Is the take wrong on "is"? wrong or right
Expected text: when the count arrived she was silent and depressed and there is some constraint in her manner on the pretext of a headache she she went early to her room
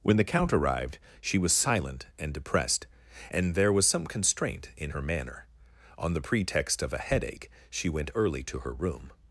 wrong